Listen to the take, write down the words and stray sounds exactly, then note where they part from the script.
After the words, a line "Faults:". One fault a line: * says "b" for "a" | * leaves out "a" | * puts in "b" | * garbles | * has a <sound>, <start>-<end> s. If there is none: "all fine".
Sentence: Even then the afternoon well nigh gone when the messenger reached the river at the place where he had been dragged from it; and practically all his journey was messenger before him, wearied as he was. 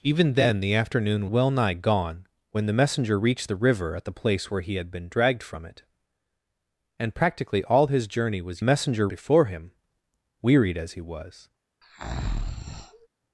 Even then the afternoon well nigh gone when the messenger reached the river at the place where he had been dragged from it; and practically all his journey was messenger before him, wearied as he was.
Faults:
* has a breath, 11.8-13.1 s